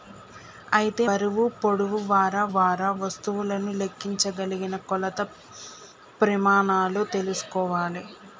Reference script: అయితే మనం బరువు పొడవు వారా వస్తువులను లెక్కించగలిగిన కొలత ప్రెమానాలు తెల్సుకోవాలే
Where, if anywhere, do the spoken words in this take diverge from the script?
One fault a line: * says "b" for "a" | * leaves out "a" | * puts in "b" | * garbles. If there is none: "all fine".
* leaves out "మనం"
* puts in "వారా"